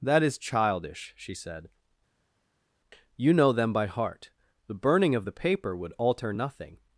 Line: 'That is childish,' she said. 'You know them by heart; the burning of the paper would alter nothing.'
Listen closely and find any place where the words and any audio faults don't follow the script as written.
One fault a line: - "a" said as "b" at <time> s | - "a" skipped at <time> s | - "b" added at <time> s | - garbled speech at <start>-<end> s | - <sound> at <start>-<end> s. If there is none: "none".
none